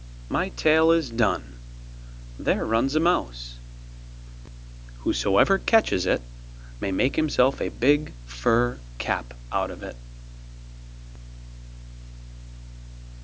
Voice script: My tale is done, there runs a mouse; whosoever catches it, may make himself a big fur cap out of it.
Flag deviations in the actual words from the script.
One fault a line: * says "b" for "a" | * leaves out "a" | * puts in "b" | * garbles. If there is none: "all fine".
all fine